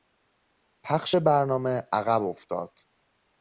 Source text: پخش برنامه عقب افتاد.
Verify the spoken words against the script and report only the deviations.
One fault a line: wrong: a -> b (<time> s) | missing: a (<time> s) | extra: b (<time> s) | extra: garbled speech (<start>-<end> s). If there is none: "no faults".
no faults